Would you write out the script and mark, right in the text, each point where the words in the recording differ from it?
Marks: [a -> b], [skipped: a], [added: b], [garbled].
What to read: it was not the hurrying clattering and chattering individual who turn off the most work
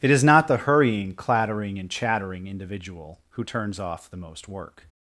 it [was -> is] not the hurrying clattering and chattering individual who [turn -> turns] off the most work